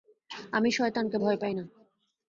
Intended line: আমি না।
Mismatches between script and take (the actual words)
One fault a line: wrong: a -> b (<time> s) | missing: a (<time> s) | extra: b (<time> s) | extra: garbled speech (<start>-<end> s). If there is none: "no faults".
extra: শয়তানকে ভয় পাই (0.7 s)